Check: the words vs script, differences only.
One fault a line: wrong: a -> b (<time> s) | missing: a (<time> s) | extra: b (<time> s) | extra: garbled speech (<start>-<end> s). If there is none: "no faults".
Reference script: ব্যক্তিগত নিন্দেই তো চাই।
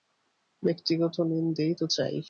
no faults